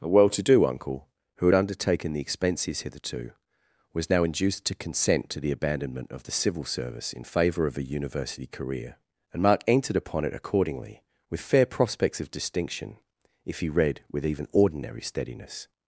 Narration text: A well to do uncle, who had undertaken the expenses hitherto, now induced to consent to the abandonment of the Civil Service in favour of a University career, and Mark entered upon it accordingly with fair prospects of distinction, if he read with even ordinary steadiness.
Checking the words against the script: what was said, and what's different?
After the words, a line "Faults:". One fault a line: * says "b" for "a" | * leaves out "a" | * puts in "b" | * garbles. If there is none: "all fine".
A well to do uncle, who had undertaken the expenses hitherto, was now induced to consent to the abandonment of the Civil Service in favour of a University career, and Mark entered upon it accordingly with fair prospects of distinction, if he read with even ordinary steadiness.
Faults:
* puts in "was"